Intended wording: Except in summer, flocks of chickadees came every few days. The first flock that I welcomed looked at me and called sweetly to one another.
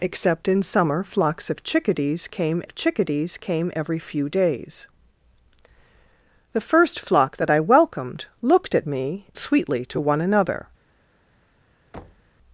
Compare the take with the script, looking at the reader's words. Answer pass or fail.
fail